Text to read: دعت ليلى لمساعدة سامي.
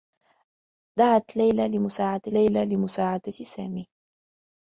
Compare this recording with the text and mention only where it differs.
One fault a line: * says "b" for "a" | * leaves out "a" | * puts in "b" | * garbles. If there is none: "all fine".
* puts in "ليلى لمساعدة"